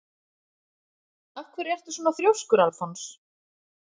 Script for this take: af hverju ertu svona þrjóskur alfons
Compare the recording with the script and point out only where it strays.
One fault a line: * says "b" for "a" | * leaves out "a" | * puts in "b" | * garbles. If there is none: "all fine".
all fine